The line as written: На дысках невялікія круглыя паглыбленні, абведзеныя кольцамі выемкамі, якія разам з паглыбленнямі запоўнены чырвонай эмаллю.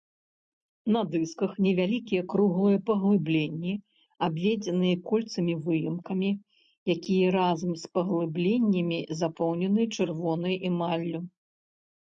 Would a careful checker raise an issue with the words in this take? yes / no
no